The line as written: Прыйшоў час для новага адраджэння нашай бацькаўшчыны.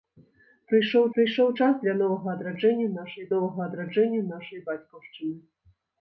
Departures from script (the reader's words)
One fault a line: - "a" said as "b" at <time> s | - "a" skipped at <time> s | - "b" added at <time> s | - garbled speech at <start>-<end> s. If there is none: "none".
- "прыйшоў" added at 1.2 s
- "новага адраджэння нашай" added at 3.3 s